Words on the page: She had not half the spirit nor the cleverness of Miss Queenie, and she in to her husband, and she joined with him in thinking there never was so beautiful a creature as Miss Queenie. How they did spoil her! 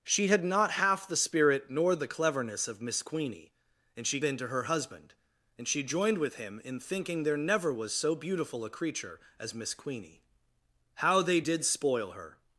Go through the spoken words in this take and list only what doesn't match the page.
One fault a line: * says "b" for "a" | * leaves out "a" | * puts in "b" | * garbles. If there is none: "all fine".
all fine